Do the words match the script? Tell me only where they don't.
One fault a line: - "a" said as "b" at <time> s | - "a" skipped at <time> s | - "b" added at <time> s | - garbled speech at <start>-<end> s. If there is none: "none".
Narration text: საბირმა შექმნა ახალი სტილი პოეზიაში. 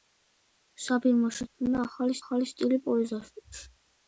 - "ახალი" added at 2.2 s